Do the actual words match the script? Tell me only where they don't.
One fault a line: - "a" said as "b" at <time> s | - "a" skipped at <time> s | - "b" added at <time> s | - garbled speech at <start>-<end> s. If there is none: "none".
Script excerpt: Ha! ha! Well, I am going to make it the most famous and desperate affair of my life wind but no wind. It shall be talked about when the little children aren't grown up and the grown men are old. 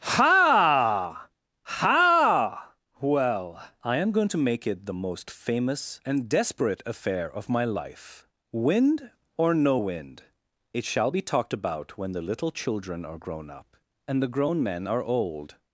- "but" said as "or" at 9.4 s
- "aren't" said as "are" at 13.1 s